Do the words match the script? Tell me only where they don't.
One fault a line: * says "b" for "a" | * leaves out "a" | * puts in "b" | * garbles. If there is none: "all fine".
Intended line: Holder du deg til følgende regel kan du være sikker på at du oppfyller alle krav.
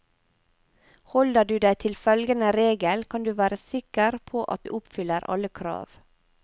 all fine